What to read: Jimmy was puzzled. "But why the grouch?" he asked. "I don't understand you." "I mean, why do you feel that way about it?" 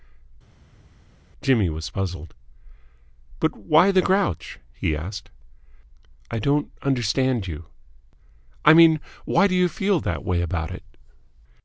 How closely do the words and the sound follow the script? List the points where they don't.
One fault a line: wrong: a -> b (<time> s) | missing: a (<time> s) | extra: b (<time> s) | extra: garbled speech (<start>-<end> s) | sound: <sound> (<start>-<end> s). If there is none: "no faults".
no faults